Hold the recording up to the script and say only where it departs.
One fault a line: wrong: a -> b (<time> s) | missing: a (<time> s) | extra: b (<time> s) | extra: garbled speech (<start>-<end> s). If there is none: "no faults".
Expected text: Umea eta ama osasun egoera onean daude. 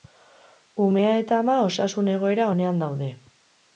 no faults